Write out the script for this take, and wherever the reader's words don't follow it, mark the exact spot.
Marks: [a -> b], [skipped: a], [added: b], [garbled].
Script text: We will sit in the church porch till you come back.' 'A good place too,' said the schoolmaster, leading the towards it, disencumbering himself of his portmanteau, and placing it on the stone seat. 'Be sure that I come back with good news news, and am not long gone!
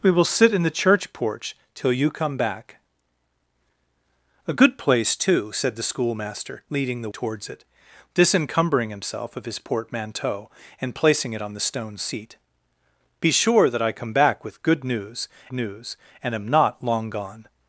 We will sit in the church porch till you come back.' 'A good place too,' said the schoolmaster, leading the towards it, disencumbering himself of his portmanteau, and placing it on the stone seat. 'Be sure that I come back with good news news, and am not long gone!